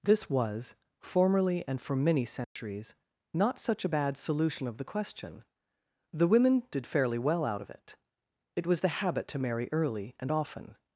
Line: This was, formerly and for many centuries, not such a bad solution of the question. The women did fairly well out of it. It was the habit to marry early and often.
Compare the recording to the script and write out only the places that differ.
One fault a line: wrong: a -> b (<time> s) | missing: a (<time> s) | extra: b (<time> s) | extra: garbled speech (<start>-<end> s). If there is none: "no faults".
no faults